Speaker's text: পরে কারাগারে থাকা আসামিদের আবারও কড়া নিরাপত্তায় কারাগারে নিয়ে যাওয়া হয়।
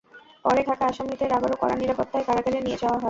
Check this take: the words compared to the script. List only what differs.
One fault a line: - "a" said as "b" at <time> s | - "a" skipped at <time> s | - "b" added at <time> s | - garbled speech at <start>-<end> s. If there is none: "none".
- "কারাগারে" skipped at 0.6 s